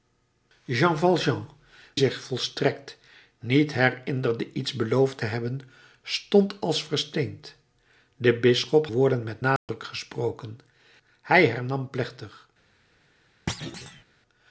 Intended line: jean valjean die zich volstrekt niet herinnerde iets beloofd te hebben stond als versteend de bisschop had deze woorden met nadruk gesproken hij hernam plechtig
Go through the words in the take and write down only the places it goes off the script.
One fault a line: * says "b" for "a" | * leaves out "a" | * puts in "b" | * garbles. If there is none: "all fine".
* leaves out "die"
* leaves out "had deze"